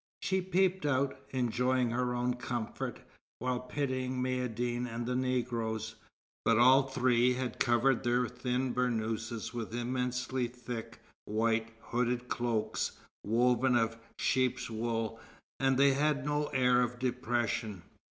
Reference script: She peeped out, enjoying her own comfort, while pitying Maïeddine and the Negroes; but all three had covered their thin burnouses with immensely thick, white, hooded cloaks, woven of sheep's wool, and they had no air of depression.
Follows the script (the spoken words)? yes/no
yes